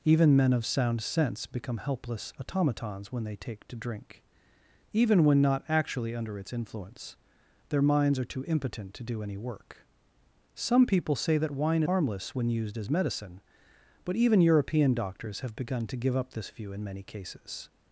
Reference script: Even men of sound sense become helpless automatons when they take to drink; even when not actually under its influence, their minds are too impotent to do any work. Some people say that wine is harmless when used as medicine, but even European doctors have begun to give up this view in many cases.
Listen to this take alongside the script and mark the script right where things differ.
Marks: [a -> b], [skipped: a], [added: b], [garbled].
Even men of sound sense become helpless automatons when they take to drink; even when not actually under its influence, their minds are too impotent to do any work. Some people say that wine [skipped: is] harmless when used as medicine, but even European doctors have begun to give up this view in many cases.